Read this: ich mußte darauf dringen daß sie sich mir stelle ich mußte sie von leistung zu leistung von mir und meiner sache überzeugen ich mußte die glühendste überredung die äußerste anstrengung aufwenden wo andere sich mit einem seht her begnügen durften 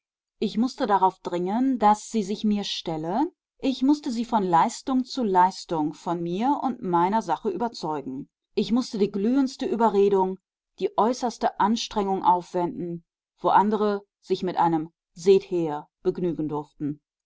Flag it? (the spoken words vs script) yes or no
no